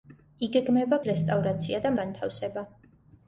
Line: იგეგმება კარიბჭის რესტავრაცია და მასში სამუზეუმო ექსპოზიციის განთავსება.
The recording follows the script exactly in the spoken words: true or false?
false